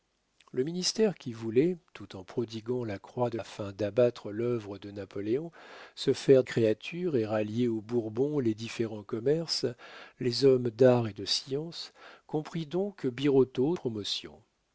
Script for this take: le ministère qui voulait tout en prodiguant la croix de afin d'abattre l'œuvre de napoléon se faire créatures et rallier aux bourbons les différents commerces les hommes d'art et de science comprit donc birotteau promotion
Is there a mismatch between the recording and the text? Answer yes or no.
no